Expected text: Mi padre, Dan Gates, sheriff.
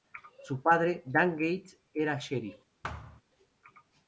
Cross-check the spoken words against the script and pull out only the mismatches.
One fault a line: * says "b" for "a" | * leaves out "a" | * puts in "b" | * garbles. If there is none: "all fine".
* says "Su" for "Mi"
* puts in "era"